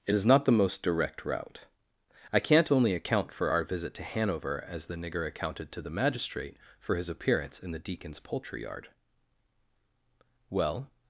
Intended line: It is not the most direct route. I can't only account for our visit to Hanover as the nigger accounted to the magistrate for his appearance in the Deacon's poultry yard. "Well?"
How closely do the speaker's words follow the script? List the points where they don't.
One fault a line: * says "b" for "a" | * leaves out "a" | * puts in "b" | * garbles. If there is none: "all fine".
all fine